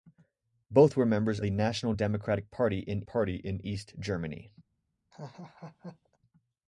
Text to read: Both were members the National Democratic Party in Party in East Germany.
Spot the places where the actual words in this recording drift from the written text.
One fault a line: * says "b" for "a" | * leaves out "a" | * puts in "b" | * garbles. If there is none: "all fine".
all fine